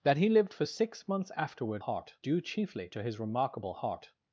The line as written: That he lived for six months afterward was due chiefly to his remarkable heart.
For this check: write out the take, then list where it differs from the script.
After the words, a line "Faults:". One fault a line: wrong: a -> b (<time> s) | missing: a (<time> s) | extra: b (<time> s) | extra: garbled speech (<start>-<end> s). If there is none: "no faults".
That he lived for six months afterward heart due chiefly to his remarkable heart.
Faults:
wrong: was -> heart (1.8 s)